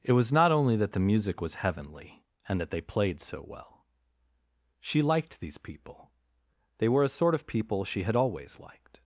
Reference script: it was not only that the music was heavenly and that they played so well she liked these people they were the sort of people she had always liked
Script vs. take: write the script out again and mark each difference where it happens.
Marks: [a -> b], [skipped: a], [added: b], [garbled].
it was not only that the music was heavenly and that they played so well she liked these people they were [the -> a] sort of people she had always liked